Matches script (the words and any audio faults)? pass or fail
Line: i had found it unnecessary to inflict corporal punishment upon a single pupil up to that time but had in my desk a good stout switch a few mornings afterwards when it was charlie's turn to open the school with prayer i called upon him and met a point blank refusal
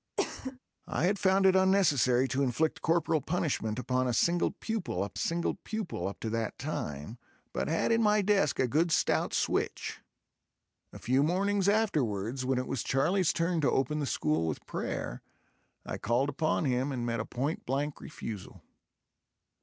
fail